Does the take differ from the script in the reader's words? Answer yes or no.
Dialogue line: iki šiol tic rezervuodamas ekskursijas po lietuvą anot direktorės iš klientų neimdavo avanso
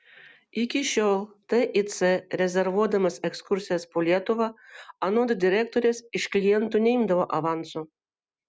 no